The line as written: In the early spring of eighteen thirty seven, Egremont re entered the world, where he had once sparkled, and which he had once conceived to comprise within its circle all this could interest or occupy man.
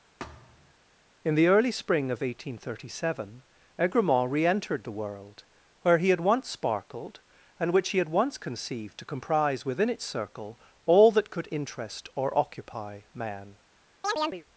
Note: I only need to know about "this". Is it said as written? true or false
false